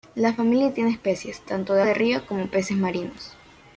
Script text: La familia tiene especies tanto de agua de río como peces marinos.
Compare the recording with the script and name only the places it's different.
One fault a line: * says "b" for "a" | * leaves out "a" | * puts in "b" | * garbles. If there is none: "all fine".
* leaves out "agua"